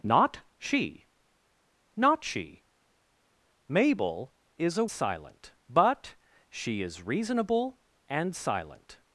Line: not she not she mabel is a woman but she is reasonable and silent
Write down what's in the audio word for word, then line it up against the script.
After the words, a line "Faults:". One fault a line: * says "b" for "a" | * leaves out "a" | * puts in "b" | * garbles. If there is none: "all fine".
not she not she mabel is a silent but she is reasonable and silent
Faults:
* says "silent" for "woman"